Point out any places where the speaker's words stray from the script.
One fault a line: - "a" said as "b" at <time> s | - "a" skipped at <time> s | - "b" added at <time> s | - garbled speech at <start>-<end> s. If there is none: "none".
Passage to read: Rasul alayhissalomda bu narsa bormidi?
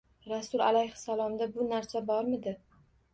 none